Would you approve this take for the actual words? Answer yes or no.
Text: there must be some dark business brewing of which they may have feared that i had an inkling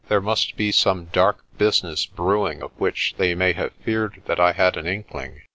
yes